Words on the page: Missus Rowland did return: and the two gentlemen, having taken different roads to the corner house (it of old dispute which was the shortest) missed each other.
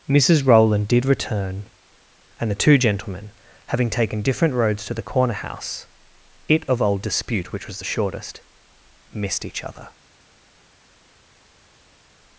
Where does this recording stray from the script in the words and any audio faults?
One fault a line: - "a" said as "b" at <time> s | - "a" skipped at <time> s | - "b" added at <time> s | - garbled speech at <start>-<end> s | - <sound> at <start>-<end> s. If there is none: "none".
none